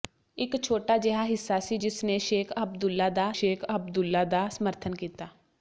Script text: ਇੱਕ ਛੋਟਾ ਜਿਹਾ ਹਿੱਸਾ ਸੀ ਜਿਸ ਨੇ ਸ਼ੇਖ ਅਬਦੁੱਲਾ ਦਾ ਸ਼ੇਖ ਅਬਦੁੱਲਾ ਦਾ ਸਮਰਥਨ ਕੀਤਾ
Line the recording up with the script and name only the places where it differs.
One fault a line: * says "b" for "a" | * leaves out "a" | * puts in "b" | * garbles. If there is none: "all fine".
all fine